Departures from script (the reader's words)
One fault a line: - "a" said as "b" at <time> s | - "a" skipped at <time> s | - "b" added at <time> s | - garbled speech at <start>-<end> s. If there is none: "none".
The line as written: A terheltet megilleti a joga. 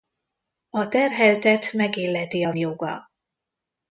none